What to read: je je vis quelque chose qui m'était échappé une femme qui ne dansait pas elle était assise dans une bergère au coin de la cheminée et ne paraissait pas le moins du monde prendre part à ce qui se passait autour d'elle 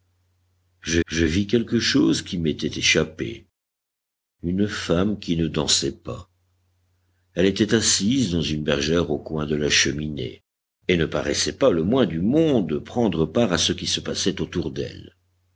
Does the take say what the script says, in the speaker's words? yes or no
yes